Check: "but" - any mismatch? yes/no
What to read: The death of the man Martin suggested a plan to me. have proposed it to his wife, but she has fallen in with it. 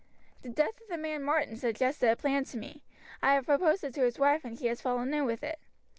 yes